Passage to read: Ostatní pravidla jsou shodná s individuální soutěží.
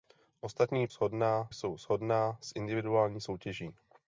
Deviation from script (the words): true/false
true